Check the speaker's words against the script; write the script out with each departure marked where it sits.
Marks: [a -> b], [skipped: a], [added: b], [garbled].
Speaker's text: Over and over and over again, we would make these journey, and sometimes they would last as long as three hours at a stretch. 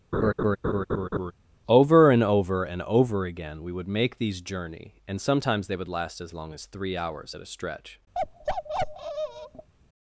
Over and over and over again, we would make these journey, and sometimes they would last as long as three hours at a stretch.